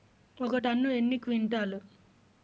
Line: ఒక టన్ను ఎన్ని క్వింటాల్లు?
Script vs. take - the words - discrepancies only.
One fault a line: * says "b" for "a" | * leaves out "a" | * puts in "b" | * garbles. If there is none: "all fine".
all fine